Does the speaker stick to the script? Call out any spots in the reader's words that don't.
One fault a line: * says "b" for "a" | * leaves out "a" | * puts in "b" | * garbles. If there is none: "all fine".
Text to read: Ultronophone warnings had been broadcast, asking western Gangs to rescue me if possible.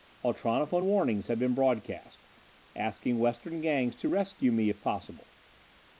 all fine